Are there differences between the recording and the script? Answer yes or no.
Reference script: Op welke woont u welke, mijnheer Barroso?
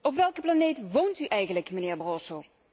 yes